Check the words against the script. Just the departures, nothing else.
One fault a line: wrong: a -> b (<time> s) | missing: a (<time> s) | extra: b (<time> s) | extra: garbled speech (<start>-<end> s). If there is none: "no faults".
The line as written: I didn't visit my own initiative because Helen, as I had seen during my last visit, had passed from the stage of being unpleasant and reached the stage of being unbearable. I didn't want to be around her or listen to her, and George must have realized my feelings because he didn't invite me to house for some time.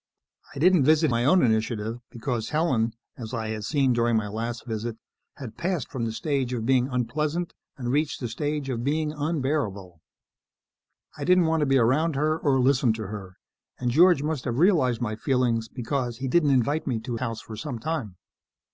no faults